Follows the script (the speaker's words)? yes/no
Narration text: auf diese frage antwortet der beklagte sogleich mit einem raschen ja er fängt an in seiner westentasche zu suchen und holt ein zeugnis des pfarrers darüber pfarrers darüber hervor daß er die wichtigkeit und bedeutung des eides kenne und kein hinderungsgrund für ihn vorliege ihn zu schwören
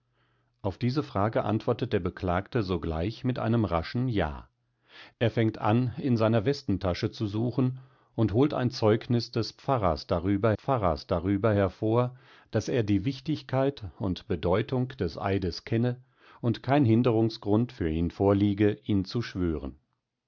yes